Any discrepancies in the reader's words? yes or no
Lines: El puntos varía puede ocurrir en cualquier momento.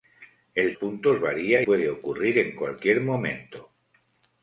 no